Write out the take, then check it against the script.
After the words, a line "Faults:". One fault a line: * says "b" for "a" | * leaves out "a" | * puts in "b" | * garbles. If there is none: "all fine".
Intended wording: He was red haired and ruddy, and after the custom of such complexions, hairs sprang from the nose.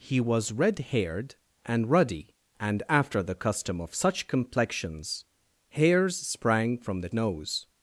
He was red haired and ruddy, and after the custom of such complexions, hairs sprang from the nose.
Faults:
all fine